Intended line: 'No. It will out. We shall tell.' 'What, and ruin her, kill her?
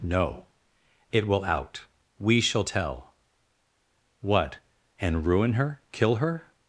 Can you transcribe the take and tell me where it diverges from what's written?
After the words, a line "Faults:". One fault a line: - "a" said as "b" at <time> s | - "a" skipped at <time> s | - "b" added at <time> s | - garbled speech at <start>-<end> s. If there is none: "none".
'No. It will out. We shall tell.' 'What, and ruin her, kill her?
Faults:
none